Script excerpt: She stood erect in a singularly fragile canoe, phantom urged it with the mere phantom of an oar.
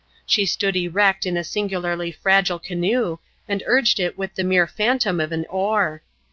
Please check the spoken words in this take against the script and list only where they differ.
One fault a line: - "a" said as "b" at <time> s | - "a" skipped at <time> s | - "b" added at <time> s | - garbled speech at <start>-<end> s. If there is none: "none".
- "phantom" said as "and" at 3.5 s